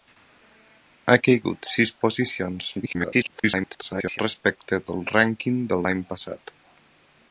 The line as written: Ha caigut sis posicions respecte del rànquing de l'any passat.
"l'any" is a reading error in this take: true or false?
false